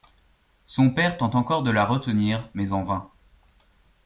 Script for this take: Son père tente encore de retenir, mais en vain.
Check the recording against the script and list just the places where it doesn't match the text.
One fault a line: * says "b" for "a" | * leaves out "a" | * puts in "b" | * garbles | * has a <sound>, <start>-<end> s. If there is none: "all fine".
* puts in "la"